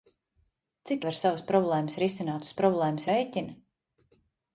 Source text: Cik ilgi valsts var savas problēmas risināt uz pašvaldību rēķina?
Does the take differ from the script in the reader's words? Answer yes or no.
yes